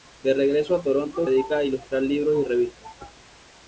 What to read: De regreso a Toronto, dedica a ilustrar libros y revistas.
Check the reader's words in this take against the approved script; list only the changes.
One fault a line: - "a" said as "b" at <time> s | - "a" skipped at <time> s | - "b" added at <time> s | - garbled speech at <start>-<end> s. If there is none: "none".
none